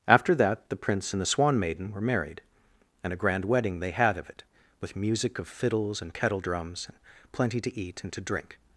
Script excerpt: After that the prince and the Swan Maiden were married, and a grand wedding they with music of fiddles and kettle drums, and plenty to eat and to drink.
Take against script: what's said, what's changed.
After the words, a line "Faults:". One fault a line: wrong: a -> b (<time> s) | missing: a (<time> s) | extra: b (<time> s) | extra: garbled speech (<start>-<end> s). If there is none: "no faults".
After that the prince and the Swan Maiden were married, and a grand wedding they had of it, with music of fiddles and kettle drums, and plenty to eat and to drink.
Faults:
extra: had of it (3.9 s)